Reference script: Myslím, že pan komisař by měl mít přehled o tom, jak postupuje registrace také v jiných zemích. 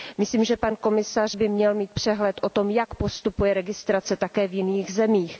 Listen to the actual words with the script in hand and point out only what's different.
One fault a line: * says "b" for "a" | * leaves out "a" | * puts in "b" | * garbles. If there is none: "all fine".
all fine